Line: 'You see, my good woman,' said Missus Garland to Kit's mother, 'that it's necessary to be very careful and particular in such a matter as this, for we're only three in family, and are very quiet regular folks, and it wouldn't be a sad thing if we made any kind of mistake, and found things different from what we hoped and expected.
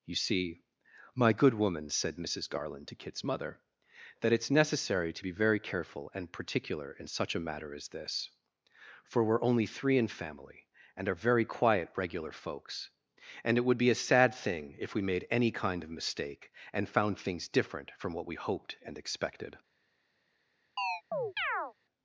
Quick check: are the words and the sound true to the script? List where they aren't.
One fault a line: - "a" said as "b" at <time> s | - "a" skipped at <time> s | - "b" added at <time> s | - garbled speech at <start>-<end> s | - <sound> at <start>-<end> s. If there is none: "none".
- "wouldn't" said as "would" at 13.6 s
- chirp at 20.8-21.7 s